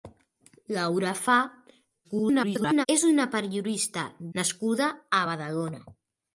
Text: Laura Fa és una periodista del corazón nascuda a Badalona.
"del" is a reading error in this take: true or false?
true